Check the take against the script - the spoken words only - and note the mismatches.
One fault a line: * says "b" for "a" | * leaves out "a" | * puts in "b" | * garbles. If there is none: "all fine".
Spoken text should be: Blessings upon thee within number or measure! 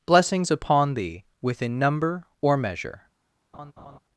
all fine